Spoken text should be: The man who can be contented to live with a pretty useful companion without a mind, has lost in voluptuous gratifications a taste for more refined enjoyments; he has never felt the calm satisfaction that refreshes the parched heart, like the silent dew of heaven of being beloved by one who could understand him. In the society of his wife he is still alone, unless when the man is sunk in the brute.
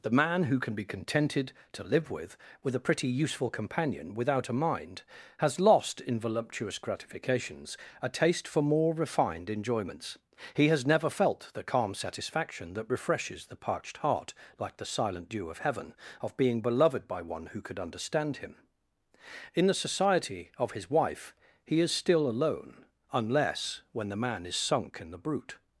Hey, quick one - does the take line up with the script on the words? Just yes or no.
no